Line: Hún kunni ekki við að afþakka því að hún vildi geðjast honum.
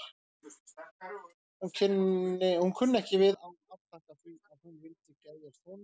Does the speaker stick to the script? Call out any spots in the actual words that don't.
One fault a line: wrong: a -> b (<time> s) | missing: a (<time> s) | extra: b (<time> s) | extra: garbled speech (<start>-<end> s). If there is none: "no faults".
no faults